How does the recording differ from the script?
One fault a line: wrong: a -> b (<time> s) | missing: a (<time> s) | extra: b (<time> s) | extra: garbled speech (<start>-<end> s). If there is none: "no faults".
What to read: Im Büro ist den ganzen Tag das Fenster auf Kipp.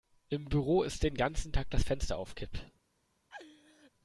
no faults